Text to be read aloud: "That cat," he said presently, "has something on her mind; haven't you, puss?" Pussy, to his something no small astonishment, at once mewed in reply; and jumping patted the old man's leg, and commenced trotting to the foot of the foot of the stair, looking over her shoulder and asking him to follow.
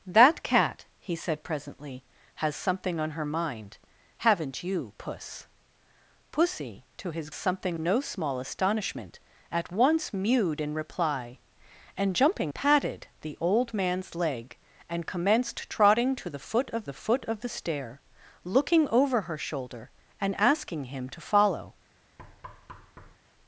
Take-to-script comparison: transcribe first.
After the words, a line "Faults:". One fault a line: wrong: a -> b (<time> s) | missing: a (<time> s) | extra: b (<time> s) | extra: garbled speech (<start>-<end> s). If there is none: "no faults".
"That cat," he said presently, "has something on her mind; haven't you, puss?" Pussy, to his something no small astonishment, at once mewed in reply; and jumping patted the old man's leg, and commenced trotting to the foot of the foot of the stair, looking over her shoulder and asking him to follow.
Faults:
no faults